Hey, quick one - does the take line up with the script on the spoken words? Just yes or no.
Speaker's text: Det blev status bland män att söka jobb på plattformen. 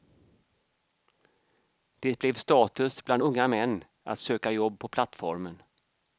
no